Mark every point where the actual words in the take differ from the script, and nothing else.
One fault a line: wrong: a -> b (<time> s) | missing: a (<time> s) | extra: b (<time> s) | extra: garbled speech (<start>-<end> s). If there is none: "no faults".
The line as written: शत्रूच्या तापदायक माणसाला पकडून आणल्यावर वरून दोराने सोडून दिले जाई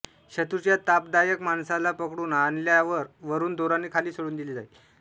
extra: खाली (3.9 s)